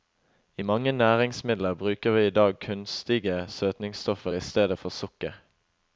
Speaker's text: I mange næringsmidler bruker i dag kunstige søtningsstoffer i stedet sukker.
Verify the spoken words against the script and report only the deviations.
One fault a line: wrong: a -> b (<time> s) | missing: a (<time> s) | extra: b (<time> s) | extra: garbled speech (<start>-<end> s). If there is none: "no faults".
extra: vi (2.1 s)
extra: for (4.8 s)